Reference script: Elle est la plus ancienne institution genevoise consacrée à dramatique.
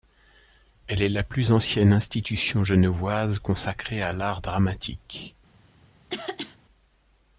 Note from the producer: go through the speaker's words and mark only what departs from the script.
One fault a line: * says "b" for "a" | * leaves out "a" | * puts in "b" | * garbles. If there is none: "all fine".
* puts in "l'art"